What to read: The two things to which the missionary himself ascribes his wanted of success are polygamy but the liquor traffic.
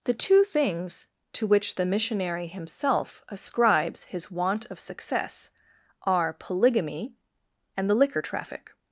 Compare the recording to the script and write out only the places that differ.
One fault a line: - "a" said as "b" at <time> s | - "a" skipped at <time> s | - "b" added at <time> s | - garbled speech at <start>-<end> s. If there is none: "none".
- "wanted" said as "want" at 4.3 s
- "but" said as "and" at 7.8 s